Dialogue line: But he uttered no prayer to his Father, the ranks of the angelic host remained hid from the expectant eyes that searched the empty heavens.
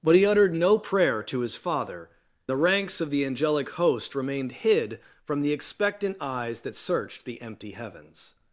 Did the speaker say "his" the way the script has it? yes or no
yes